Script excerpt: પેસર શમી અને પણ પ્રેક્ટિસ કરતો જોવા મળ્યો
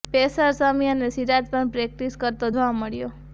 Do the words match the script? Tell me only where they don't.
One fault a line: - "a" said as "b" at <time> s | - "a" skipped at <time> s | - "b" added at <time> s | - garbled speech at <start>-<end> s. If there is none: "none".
- "સિરાજ" added at 1.1 s